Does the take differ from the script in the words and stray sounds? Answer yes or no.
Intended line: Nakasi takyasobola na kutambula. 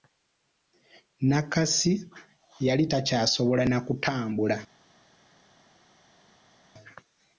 yes